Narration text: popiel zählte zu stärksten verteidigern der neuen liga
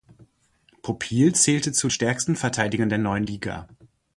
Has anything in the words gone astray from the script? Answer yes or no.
no